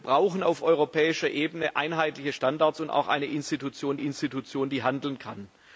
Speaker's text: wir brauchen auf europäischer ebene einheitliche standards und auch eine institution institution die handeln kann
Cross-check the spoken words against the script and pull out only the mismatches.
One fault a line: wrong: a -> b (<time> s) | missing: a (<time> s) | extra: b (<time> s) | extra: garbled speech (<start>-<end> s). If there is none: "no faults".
no faults